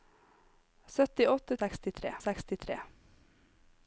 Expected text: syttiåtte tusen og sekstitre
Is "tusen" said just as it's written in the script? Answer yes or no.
no